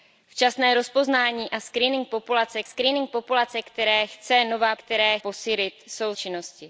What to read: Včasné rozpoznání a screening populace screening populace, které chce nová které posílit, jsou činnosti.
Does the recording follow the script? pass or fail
pass